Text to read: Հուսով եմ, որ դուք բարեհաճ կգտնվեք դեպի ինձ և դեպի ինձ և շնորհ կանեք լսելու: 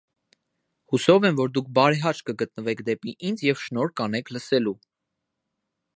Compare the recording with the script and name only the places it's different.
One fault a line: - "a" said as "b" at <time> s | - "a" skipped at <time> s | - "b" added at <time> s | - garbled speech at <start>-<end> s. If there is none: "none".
- "դեպի ինձ և" skipped at 3.6 s